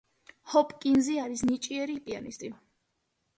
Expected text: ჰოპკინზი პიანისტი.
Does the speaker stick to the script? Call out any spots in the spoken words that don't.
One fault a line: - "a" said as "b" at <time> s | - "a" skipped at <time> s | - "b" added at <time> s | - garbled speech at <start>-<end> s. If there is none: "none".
- "არის ნიჭიერი" added at 1.2 s